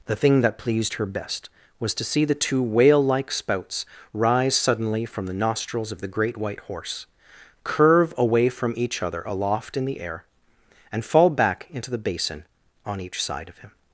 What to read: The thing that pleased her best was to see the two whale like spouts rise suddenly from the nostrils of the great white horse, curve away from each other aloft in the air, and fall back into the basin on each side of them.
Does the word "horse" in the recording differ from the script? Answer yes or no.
no